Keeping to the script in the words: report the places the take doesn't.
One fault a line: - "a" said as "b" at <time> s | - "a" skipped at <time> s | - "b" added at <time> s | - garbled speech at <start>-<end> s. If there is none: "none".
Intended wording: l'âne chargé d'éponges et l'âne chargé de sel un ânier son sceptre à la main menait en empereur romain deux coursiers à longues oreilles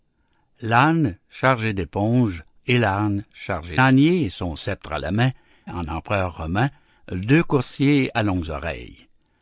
- "de sel un" skipped at 3.8 s
- "menait" skipped at 5.3 s